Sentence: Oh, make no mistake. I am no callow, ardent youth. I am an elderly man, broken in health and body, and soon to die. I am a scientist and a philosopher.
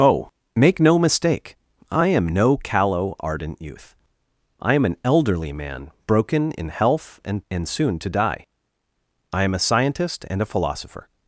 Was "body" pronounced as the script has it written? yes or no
no